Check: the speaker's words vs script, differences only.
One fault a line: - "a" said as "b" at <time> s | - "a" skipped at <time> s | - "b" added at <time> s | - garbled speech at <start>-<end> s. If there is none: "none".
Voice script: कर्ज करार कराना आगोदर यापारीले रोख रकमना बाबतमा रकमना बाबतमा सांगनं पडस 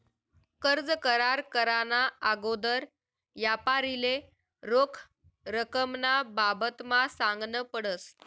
- "रकमना बाबतमा" skipped at 7.0 s